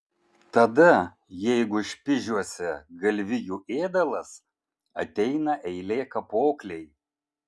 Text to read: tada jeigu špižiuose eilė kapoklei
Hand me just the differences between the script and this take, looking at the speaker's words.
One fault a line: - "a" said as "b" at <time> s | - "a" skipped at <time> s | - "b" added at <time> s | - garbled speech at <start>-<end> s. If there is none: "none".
- "galvijų ėdalas ateina" added at 3.0 s